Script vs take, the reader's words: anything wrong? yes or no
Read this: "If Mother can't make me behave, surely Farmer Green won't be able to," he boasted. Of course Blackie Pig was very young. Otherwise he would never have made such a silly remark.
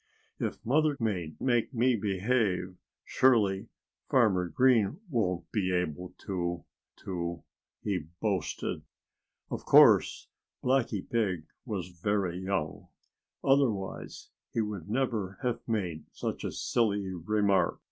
yes